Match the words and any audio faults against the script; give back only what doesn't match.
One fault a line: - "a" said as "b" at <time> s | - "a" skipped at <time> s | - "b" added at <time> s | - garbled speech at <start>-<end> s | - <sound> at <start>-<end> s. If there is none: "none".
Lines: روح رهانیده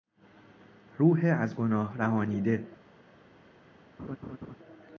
- "از گناه" added at 1.4 s
- laugh at 4.0-4.6 s